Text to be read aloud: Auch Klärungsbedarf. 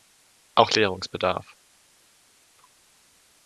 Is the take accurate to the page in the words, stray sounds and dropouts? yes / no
yes